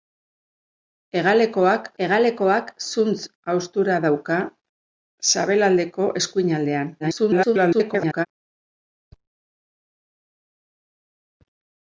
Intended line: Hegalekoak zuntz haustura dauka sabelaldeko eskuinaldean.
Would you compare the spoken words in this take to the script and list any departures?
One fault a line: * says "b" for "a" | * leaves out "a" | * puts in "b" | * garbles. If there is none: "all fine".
* puts in "hegalekoak"
* garbles